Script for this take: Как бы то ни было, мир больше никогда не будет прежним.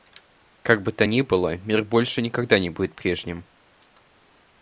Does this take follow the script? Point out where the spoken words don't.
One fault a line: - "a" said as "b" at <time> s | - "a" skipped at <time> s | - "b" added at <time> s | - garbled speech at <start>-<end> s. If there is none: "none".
none